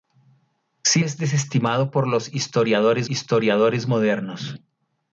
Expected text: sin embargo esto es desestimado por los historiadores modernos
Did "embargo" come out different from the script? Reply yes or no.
yes